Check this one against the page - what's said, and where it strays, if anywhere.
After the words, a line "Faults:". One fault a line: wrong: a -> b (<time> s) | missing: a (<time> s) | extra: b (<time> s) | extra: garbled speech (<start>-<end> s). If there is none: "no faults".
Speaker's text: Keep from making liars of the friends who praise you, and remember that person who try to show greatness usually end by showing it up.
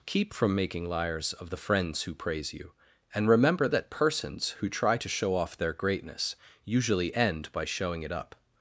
Keep from making liars of the friends who praise you, and remember that persons who try to show off their greatness usually end by showing it up.
Faults:
wrong: person -> persons (3.9 s)
extra: off their (5.4 s)